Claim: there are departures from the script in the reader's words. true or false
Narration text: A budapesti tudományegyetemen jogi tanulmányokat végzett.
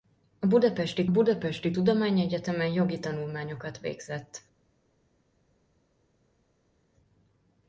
true